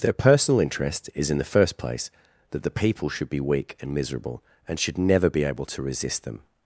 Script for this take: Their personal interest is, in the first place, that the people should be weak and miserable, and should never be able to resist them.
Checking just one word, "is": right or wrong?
right